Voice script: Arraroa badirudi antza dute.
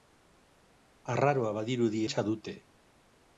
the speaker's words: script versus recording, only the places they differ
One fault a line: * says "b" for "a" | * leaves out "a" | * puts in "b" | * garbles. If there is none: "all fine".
all fine